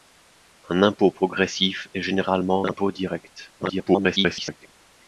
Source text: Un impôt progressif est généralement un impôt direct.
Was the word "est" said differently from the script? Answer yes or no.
no